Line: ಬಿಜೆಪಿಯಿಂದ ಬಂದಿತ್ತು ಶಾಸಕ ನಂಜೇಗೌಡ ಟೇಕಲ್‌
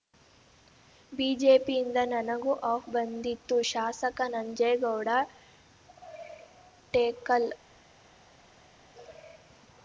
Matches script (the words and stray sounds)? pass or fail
fail